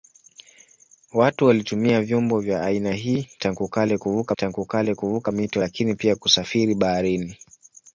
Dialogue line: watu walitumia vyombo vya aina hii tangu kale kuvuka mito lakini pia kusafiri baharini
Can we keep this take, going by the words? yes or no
no